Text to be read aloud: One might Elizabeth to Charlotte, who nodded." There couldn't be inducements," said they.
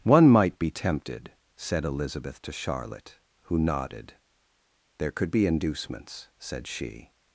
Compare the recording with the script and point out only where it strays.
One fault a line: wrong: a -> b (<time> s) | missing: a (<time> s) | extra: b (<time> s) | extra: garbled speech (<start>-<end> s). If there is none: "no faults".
extra: be tempted said (0.6 s)
wrong: couldn't -> could (5.1 s)
wrong: they -> she (6.7 s)